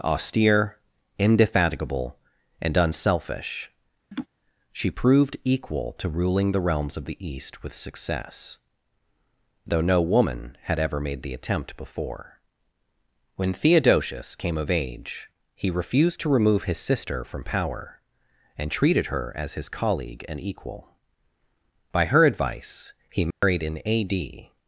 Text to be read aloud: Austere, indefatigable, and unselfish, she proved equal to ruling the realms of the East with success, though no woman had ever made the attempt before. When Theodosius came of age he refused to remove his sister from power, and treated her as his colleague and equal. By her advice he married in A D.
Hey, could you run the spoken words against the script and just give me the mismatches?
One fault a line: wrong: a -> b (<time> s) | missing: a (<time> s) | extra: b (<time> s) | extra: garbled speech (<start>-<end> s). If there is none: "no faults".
no faults